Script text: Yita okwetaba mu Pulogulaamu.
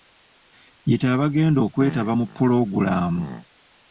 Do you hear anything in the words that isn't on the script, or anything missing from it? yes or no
yes